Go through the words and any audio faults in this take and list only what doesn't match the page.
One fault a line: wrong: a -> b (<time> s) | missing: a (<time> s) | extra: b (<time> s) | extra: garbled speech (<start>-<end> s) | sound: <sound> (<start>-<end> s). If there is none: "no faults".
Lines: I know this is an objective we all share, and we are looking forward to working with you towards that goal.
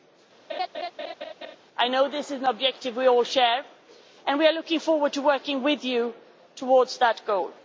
sound: laugh (0.5-1.6 s)